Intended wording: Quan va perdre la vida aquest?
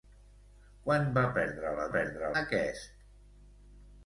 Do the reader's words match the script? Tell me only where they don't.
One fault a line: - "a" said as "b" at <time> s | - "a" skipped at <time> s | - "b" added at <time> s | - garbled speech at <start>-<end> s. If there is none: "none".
- "vida" said as "perdre" at 1.9 s